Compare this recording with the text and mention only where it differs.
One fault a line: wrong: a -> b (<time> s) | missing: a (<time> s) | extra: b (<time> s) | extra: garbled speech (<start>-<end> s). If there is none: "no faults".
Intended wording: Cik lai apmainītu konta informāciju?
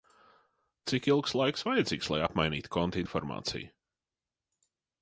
extra: ilgs laiks vajadzīgs (1.1 s)